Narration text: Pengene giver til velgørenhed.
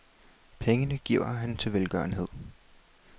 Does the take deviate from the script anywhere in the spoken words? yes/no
yes